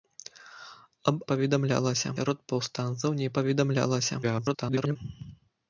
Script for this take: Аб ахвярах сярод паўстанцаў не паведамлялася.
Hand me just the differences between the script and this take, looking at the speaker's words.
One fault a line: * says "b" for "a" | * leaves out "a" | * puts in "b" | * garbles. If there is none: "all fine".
* says "паведамлялася" for "ахвярах"
* garbles